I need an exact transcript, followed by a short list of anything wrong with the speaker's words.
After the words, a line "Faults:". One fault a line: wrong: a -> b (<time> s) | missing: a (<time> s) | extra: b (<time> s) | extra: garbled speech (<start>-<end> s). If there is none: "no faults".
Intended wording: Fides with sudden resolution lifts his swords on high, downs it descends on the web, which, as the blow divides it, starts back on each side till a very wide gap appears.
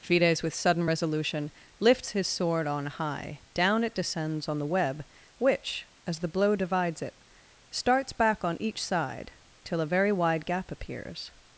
Fides with sudden resolution lifts his sword on high, down it descends on the web, which, as the blow divides it, starts back on each side till a very wide gap appears.
Faults:
wrong: swords -> sword (2.3 s)
wrong: downs -> down (3.5 s)